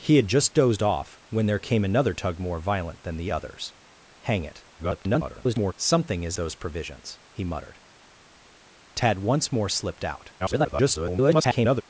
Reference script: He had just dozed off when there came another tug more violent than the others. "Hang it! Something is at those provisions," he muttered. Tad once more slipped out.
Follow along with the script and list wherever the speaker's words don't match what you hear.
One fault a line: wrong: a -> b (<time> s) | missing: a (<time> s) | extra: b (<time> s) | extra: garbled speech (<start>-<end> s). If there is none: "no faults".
extra: garbled speech (4.8-5.7 s)
missing: at (6.4 s)
extra: garbled speech (10.4-11.8 s)